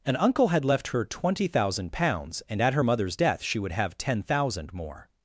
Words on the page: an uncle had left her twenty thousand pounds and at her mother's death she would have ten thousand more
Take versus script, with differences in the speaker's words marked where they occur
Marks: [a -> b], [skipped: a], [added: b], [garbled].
an uncle had left her twenty thousand pounds and at her mother's death she would have ten thousand more